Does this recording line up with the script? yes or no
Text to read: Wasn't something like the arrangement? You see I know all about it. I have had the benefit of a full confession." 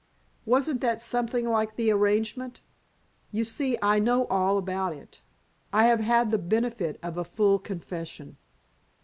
no